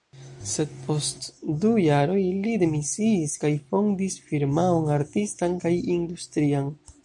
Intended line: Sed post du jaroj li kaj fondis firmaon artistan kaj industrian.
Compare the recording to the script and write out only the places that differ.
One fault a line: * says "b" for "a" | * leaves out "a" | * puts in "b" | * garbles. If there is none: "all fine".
* puts in "demisiis"